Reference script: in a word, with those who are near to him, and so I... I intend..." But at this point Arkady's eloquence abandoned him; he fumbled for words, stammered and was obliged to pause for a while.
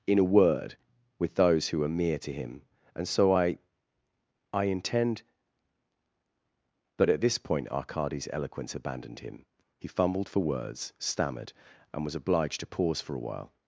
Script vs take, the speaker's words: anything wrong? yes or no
yes